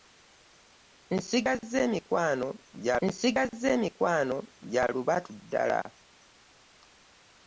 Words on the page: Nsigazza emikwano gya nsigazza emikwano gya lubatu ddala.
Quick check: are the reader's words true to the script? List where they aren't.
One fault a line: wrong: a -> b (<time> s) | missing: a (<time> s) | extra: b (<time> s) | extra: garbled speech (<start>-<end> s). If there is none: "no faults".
no faults